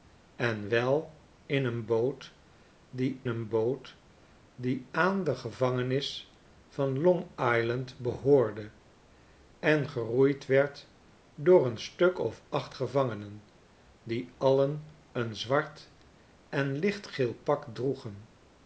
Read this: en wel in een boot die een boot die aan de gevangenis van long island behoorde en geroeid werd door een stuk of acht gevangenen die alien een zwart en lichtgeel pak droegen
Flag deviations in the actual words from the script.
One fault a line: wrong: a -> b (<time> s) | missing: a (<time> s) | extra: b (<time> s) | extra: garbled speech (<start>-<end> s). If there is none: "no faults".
no faults